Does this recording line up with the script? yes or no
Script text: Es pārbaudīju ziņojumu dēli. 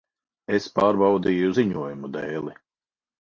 yes